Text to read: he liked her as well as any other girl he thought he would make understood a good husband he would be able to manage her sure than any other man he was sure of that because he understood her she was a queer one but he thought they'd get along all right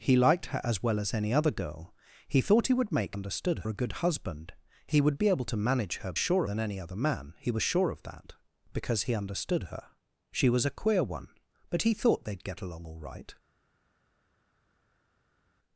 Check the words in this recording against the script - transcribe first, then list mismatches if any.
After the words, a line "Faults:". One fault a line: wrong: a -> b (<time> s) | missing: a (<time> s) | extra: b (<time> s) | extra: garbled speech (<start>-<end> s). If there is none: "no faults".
he liked her as well as any other girl he thought he would make understood a good husband he would be able to manage her sure than any other man he was sure of that because he understood her she was a queer one but he thought they'd get along all right
Faults:
no faults